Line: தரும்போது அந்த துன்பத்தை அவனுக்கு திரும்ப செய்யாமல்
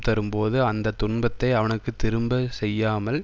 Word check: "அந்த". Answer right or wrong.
right